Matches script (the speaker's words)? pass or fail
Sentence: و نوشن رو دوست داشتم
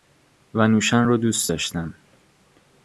pass